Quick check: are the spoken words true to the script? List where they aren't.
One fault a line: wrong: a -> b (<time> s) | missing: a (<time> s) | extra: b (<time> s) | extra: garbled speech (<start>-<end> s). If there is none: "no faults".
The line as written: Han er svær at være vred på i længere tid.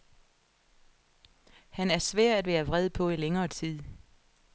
no faults